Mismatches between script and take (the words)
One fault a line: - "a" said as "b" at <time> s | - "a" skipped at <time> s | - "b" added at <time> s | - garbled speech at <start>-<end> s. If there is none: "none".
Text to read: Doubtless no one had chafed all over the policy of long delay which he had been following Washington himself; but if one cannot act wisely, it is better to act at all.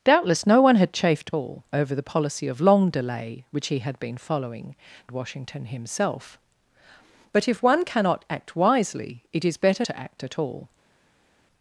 none